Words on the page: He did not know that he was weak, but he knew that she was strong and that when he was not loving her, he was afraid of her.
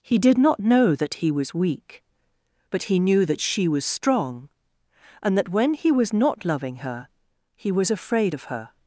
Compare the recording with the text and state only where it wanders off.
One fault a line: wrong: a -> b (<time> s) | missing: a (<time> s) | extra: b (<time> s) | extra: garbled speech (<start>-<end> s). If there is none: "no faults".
no faults